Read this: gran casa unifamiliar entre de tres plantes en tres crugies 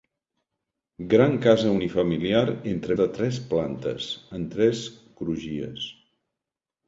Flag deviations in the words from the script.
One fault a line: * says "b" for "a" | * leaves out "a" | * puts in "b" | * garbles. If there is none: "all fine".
all fine